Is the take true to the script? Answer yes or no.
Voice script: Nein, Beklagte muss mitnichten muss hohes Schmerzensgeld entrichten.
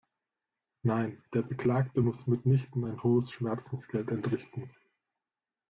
no